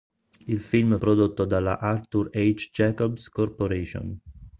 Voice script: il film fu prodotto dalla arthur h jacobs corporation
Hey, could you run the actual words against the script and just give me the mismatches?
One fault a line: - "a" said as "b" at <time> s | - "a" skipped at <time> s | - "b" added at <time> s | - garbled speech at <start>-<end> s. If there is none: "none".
- "fu" skipped at 1.0 s